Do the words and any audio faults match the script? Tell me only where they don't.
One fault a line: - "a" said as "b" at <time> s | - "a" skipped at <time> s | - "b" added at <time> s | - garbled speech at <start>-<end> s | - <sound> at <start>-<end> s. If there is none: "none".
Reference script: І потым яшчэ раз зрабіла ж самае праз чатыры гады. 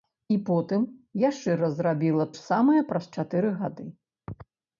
none